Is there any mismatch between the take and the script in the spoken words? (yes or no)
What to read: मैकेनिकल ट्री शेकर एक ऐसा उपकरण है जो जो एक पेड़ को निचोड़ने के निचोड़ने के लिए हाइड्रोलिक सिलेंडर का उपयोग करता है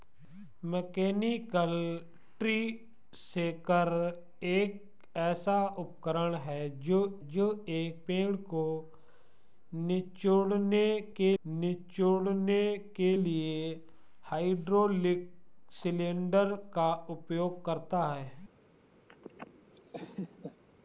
no